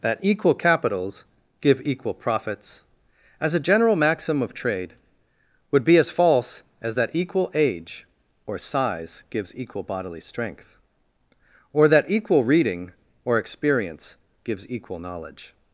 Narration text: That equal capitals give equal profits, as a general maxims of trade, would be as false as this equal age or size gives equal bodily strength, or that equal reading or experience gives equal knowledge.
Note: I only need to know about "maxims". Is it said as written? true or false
false